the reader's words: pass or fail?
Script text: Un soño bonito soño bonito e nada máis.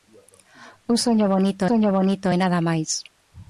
pass